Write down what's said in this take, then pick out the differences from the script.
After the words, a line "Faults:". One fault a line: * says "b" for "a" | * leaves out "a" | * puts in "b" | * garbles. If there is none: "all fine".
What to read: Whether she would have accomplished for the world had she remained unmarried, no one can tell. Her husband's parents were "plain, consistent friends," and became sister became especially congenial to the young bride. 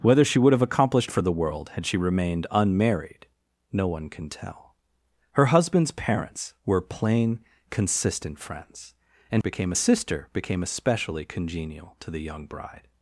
Whether she would have accomplished for the world had she remained unmarried, no one can tell. Her husband's parents were "plain, consistent friends," and became sister became especially congenial to the young bride.
Faults:
all fine